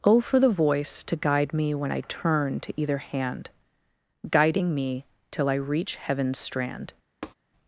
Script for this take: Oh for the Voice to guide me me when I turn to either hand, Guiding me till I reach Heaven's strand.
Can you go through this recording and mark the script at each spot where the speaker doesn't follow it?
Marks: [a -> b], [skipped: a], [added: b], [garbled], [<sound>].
Oh for the Voice to guide me [skipped: me] when I turn to either hand, Guiding me till I reach Heaven's strand. [tap]